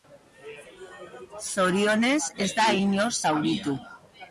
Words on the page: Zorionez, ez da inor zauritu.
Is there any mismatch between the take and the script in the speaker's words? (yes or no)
no